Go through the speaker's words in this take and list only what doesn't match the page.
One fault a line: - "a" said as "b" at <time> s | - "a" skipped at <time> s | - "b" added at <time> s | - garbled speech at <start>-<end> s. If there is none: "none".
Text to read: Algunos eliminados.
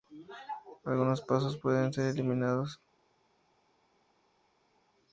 - "pasos pueden ser" added at 1.2 s